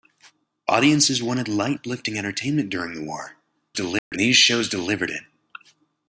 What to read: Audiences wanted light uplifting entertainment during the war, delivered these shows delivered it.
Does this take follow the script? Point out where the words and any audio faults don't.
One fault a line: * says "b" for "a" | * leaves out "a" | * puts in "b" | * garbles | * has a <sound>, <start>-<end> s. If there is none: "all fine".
* has a dropout, 4.0-4.1 s